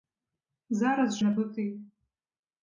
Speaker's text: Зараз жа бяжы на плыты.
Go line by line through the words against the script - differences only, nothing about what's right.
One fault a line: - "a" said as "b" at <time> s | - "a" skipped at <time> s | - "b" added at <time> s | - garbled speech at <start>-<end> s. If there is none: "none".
- "жа бяжы" skipped at 1.2 s